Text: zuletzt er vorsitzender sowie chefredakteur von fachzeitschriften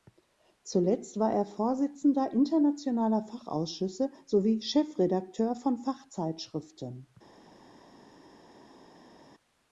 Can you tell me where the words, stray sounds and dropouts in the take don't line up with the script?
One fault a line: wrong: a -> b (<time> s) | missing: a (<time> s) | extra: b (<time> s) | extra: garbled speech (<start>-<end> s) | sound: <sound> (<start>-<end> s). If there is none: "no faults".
extra: war (1.2 s)
extra: internationaler fachausschüsse (2.3 s)